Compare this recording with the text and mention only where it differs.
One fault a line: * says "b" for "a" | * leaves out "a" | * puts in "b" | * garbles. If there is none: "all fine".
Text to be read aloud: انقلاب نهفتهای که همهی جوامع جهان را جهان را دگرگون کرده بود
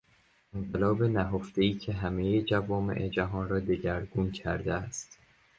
* leaves out "جهان را"
* says "است" for "بود"